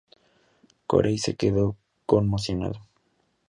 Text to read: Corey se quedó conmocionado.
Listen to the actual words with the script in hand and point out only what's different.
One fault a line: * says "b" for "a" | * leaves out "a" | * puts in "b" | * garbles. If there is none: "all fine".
all fine